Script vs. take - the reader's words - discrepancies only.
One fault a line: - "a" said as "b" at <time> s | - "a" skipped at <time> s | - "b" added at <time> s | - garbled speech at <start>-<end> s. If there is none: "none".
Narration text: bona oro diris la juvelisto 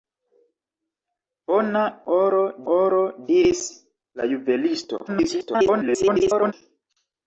- "oro" added at 2.7 s
- garbled speech at 5.1-6.5 s